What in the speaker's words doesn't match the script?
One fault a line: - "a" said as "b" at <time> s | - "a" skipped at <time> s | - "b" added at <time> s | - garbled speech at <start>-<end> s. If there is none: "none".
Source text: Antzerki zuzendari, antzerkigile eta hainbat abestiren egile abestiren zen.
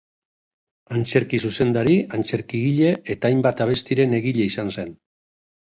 - "abestiren" said as "izan" at 4.5 s